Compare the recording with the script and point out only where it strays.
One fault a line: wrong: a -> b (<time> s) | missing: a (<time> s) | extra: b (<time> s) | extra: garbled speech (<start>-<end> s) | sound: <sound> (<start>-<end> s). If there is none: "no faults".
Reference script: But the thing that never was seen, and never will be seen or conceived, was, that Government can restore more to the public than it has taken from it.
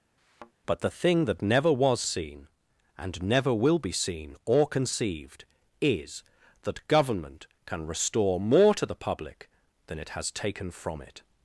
sound: thud (0.2-0.5 s)
wrong: was -> is (5.8 s)